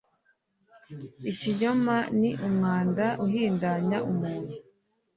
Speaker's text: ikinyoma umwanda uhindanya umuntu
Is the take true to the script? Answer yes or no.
no